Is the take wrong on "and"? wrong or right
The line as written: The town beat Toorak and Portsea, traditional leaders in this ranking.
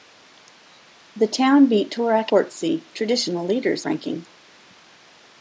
wrong